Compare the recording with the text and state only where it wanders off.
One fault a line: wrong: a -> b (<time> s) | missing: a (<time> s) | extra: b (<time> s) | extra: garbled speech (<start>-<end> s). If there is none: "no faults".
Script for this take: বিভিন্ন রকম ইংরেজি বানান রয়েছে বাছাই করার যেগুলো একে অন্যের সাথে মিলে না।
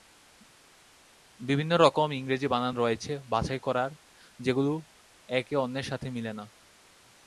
no faults